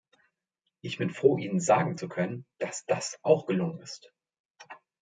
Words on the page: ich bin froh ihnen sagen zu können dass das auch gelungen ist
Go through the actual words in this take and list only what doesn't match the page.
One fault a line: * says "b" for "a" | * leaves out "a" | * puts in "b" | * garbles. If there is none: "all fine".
all fine